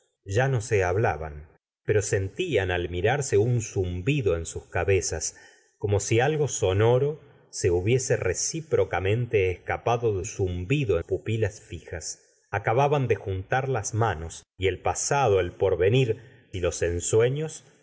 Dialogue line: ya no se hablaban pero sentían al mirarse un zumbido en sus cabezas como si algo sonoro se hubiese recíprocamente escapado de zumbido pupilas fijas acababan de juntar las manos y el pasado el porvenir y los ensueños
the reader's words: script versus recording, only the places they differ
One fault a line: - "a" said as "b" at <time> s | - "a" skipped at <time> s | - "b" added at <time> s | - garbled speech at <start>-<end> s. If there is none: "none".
none